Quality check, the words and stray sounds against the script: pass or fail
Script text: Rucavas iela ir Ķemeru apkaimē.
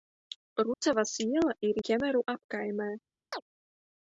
fail